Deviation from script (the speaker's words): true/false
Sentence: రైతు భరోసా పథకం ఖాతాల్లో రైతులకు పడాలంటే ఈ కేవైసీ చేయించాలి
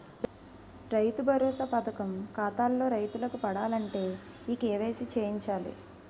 false